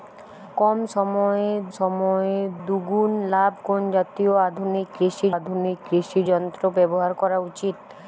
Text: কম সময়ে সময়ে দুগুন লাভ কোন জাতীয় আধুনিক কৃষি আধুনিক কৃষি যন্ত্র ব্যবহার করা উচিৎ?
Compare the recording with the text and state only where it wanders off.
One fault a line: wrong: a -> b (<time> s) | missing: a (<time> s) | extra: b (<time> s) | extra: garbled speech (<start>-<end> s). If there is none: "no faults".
no faults